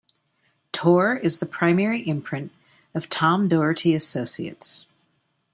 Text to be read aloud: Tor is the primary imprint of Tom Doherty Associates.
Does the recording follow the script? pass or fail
pass